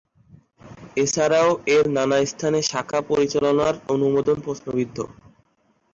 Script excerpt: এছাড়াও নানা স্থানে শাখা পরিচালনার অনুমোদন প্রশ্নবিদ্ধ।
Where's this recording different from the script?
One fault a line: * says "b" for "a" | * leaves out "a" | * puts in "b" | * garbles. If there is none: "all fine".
* puts in "এর"